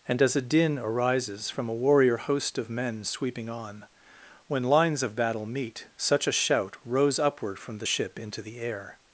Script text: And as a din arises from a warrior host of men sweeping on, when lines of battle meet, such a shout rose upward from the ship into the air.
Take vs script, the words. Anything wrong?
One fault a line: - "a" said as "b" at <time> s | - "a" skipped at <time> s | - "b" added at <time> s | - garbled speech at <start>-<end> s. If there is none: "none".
none